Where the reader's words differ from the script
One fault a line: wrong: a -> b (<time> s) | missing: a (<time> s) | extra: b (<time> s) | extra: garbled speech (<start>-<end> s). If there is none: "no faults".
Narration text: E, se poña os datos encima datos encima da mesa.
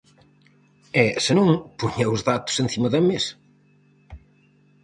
extra: non (1.4 s)
missing: datos encima (2.9 s)